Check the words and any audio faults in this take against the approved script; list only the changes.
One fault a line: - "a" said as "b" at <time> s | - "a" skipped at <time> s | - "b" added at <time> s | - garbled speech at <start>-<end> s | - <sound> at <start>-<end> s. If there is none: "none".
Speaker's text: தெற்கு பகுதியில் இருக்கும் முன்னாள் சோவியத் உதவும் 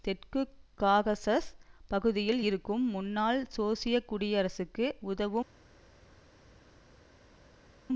- "காகசஸ்" added at 0.8 s
- "குடியரசுக்கு" added at 4.1 s